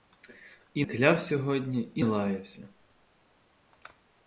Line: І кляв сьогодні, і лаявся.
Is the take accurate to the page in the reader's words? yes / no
yes